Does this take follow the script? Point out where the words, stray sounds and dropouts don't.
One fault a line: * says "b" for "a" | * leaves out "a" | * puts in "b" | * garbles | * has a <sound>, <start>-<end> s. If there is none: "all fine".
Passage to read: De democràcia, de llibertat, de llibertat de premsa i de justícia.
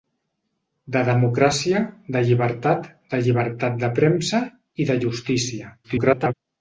* garbles